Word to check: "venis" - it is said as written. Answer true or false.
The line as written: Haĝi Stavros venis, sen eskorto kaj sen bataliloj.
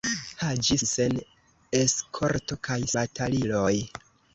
false